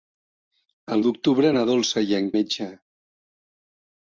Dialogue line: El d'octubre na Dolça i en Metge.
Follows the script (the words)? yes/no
yes